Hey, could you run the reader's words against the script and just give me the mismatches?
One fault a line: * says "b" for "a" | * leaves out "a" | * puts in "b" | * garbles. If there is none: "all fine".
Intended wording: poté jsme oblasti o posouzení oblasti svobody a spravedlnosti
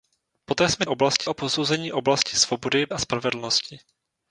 all fine